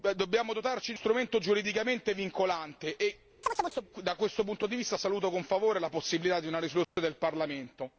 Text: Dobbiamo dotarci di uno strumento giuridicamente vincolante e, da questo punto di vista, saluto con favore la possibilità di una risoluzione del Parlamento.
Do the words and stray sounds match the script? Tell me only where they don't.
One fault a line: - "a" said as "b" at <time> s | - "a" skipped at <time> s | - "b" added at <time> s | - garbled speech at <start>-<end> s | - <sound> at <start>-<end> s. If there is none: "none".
- "uno" skipped at 1.0 s
- chirp at 3.4-3.9 s
- dropout at 6.8-7.0 s